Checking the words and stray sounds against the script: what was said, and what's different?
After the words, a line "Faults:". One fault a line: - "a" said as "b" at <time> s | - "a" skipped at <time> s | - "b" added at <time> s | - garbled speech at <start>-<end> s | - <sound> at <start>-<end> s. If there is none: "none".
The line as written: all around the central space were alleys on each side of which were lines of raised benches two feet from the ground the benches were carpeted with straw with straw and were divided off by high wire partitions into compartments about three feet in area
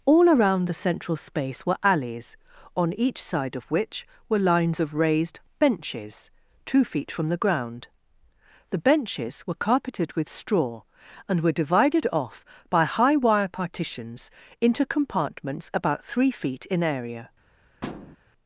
all around the central space were alleys on each side of which were lines of raised benches two feet from the ground the benches were carpeted with straw and were divided off by high wire partitions into compartments about three feet in area
Faults:
- "with straw" skipped at 10.8 s
- thud at 17.8-18.2 s